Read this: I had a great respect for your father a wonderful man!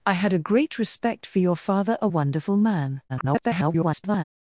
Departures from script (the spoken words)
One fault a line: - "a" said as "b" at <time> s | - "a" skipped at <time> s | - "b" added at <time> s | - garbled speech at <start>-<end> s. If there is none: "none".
- garbled speech at 3.1-4.2 s